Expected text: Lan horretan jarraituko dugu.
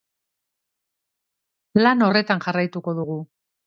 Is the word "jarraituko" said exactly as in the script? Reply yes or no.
yes